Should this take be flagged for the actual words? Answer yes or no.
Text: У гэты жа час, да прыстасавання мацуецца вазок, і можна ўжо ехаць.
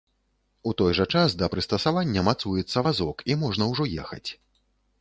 yes